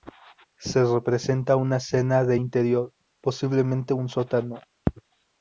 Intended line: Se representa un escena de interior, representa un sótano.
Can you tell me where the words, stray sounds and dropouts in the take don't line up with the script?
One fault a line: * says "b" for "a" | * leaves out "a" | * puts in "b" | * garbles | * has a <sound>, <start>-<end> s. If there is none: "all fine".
* says "una" for "un"
* says "posiblemente" for "representa"